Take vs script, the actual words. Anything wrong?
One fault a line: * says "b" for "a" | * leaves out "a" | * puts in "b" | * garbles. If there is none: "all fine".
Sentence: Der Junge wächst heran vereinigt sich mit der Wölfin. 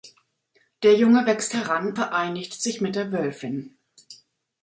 all fine